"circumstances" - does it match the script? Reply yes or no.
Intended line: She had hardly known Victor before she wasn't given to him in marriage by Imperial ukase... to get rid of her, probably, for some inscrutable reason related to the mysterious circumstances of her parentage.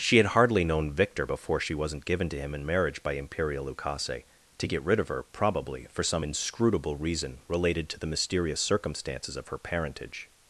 yes